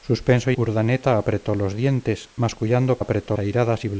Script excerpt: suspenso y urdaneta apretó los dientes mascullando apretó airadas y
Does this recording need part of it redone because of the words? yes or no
no